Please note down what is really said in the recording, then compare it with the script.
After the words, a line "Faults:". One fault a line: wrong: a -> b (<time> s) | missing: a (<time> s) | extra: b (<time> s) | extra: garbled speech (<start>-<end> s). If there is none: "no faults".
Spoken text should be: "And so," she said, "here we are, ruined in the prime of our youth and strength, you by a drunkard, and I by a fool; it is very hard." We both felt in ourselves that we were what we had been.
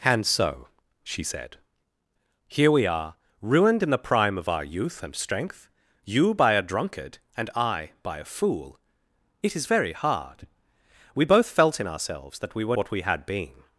"And so," she said, "here we are, ruined in the prime of our youth and strength, you by a drunkard, and I by a fool; it is very hard." We both felt in ourselves that we were what we had been.
Faults:
no faults